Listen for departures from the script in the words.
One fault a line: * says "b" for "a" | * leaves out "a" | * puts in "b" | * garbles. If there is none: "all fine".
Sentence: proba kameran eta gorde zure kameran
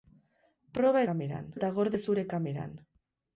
all fine